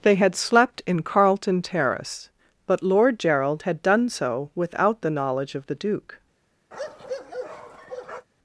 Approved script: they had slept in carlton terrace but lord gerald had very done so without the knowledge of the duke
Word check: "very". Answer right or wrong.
wrong